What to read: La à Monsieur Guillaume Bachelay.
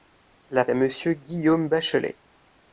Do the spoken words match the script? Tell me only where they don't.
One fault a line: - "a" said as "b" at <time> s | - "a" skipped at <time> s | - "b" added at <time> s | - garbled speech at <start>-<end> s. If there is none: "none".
none